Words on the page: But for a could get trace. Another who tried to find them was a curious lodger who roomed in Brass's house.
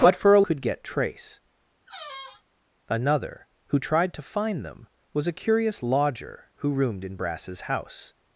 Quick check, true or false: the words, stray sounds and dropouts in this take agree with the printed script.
false